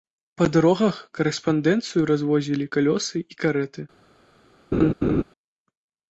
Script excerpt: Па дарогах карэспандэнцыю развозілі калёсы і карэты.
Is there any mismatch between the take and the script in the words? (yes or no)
no